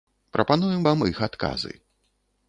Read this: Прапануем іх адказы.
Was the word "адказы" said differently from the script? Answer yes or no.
no